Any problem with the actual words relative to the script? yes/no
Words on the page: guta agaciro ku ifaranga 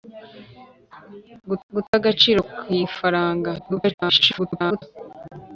yes